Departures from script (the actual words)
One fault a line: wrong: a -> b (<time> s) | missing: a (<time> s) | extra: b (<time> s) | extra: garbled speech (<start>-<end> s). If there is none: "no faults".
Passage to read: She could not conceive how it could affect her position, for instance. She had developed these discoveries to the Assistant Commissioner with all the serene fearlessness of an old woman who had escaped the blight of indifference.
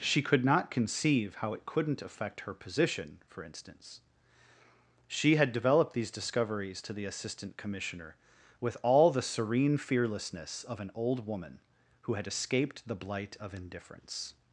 wrong: could -> couldn't (1.7 s)